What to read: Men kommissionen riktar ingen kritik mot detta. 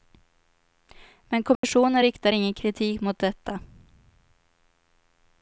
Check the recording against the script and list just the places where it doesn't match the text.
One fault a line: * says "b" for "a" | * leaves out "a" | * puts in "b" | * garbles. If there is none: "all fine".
all fine